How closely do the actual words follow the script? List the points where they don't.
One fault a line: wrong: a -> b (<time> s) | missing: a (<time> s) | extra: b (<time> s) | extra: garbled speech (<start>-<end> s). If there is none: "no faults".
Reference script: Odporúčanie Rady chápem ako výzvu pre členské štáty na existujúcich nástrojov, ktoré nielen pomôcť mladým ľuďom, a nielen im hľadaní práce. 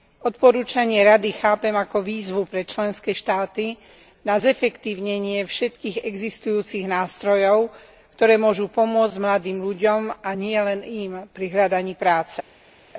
extra: zefektívnenie všetkých (4.3 s)
wrong: nielen -> môžu (8.3 s)
extra: pri (11.3 s)